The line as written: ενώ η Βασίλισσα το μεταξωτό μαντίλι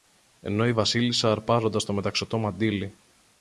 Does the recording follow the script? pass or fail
fail